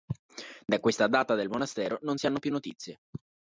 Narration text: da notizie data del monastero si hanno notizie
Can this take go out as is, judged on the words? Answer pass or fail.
fail